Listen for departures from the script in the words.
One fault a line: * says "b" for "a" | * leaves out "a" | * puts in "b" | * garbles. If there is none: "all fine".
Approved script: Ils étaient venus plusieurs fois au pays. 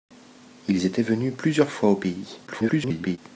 * garbles